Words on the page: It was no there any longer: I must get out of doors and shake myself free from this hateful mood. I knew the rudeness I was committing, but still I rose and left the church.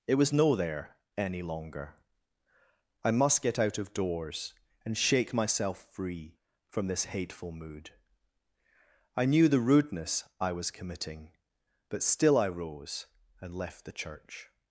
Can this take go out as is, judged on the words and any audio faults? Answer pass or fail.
pass